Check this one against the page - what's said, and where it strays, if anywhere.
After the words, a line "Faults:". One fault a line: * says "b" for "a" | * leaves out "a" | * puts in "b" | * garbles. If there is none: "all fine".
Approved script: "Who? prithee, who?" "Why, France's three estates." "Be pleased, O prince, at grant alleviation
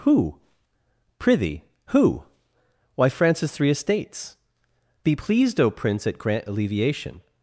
"Who? prithee, who?" "Why, France's three estates." "Be pleased, O prince, at grant alleviation
Faults:
all fine